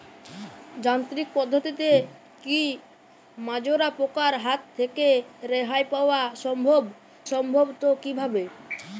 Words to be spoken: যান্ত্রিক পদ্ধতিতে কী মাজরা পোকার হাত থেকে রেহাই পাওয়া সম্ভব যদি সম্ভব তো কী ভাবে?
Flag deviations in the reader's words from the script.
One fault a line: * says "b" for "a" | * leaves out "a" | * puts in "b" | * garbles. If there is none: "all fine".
* leaves out "যদি"